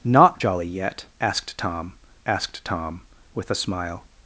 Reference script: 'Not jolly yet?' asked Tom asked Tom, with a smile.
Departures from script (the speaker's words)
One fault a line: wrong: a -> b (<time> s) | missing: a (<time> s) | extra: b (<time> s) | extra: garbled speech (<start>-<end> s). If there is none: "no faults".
no faults